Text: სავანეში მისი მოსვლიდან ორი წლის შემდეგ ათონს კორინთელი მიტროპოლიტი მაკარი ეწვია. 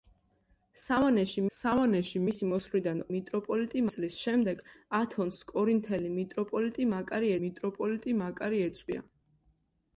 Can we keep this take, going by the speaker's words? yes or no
no